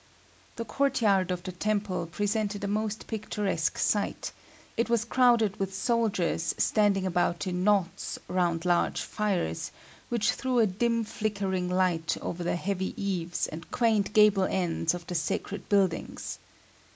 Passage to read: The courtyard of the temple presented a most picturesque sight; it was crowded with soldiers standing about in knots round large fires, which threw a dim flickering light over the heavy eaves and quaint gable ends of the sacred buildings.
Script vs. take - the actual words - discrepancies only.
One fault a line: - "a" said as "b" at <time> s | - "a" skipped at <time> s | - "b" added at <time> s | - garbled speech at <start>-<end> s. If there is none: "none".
none